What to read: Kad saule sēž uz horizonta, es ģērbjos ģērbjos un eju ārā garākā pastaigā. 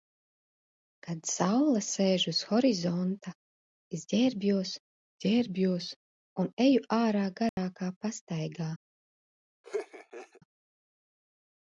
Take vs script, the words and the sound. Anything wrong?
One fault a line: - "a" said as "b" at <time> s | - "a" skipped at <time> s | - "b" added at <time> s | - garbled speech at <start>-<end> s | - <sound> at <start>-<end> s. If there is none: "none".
- dropout at 7.5-7.6 s
- laugh at 9.6-10.4 s